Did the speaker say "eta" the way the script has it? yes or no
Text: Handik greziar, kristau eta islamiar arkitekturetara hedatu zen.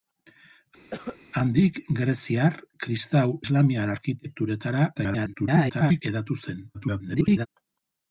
no